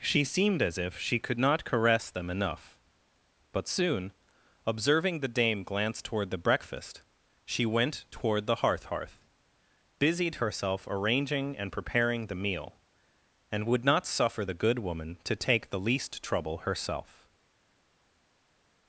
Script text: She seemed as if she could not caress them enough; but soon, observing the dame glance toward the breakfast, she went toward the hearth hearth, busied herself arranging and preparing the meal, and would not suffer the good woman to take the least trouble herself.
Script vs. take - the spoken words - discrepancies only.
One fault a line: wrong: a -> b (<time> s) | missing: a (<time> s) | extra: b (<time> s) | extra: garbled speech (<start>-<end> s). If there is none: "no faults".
no faults